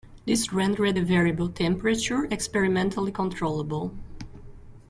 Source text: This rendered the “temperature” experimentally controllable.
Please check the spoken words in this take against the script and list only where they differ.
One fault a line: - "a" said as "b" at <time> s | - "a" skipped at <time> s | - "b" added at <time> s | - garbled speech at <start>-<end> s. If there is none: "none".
- "variable" added at 1.0 s